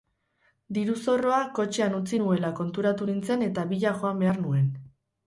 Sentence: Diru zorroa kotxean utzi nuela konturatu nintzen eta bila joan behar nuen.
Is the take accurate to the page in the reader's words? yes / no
yes